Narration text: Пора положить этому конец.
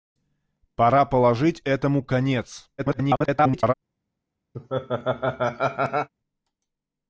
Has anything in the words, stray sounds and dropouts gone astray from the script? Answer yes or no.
yes